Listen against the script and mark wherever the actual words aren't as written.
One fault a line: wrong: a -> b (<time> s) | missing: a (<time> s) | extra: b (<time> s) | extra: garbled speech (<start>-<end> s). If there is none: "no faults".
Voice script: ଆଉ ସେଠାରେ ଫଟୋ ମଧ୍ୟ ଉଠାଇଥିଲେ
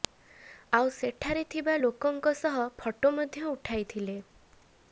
extra: ଥିବା ଲୋକଙ୍କ ସହ (1.5 s)